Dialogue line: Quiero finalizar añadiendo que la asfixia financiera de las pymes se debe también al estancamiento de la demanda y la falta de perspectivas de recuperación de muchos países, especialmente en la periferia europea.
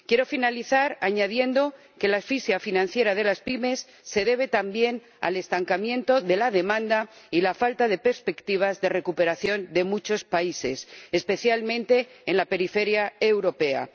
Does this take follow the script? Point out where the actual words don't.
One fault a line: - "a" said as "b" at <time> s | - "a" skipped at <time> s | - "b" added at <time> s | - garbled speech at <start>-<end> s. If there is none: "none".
none